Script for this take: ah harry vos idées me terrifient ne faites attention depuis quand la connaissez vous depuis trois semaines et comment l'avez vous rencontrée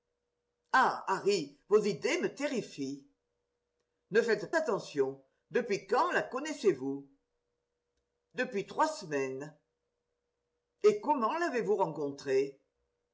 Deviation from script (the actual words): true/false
false